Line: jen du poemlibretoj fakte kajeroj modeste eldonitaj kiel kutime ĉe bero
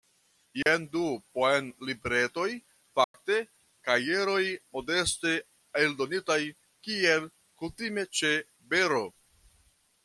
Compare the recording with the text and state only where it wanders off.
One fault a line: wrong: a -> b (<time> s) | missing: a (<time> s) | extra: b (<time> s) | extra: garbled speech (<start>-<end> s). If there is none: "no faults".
no faults